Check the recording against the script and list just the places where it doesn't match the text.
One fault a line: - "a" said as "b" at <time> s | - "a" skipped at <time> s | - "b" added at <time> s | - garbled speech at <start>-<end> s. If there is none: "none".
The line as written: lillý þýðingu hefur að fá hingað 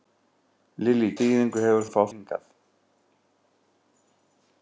none